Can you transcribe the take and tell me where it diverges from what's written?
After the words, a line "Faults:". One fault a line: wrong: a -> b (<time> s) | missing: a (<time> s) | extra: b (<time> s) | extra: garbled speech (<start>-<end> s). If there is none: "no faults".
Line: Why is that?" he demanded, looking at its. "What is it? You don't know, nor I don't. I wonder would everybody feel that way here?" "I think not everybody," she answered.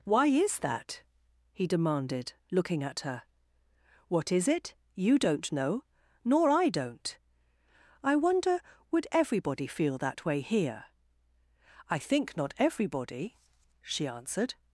Why is that?" he demanded, looking at her. "What is it? You don't know, nor I don't. I wonder would everybody feel that way here?" "I think not everybody," she answered.
Faults:
wrong: its -> her (3.0 s)